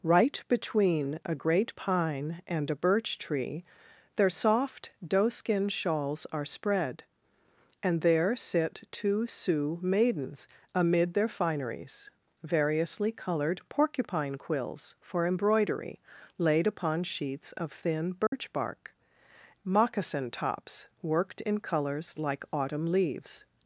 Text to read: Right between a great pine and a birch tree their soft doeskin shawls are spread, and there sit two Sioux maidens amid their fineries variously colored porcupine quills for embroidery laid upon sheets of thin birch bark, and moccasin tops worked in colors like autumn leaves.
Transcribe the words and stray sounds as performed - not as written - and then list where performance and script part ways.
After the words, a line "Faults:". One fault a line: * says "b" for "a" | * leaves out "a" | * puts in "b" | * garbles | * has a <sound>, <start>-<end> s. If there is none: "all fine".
Right between a great pine and a birch tree their soft doeskin shawls are spread, and there sit two Sioux maidens amid their fineries variously colored porcupine quills for embroidery laid upon sheets of thin birch bark, moccasin tops worked in colors like autumn leaves.
Faults:
* has a dropout, 18.3-18.3 s
* leaves out "and"